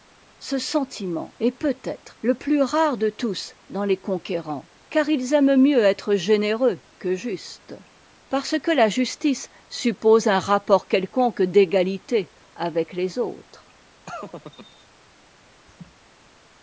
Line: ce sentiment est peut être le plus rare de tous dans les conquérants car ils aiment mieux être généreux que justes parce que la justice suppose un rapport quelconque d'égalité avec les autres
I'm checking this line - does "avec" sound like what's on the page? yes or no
yes